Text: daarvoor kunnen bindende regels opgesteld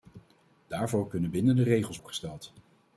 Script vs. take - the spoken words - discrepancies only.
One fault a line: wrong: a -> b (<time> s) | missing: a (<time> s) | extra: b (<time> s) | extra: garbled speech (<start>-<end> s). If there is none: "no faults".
no faults